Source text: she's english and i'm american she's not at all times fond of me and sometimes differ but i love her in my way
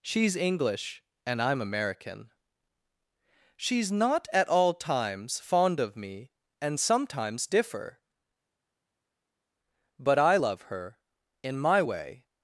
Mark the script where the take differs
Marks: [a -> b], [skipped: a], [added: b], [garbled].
she's english and i'm american she's not at all times fond of me and sometimes differ but i love her in my way